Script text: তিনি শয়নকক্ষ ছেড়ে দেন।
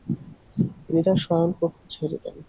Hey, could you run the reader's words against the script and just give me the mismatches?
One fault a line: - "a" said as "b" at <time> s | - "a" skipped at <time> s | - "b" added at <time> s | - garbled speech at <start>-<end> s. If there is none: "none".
- "তার" added at 1.0 s